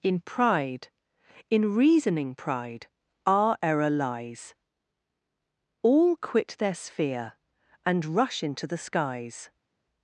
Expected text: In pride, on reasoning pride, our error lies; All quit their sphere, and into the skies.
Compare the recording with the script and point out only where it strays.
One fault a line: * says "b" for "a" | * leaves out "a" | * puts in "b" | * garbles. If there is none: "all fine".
* says "in" for "on"
* puts in "rush"